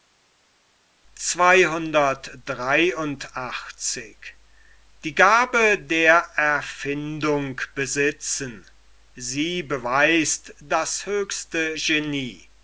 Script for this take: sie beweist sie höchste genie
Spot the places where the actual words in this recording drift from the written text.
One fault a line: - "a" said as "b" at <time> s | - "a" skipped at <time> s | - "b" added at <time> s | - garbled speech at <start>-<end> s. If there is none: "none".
- "sie" said as "das" at 10.6 s